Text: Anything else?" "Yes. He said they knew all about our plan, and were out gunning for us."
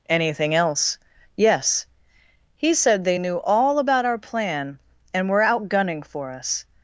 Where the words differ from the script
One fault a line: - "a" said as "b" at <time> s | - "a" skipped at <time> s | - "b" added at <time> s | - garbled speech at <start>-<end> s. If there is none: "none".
none